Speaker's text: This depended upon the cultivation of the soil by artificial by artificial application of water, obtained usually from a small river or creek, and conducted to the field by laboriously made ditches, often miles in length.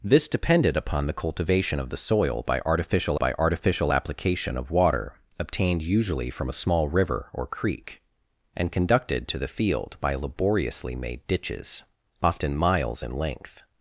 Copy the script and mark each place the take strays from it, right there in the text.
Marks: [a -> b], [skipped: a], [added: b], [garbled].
This depended upon the cultivation of the soil by artificial by artificial application of water, obtained usually from a small river or creek, and conducted to the field by laboriously made ditches, often miles in length.